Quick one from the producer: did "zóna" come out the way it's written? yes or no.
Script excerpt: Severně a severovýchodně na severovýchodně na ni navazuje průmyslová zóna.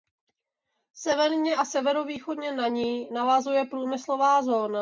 yes